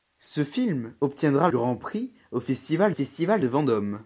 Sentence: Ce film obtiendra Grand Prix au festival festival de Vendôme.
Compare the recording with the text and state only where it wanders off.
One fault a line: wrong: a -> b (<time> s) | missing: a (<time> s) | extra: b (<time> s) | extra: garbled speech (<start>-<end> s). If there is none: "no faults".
no faults